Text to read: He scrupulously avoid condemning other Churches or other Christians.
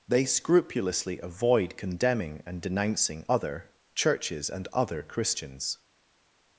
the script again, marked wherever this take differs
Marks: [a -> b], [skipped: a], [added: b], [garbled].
[He -> They] scrupulously avoid condemning [added: and denouncing] other Churches [or -> and] other Christians.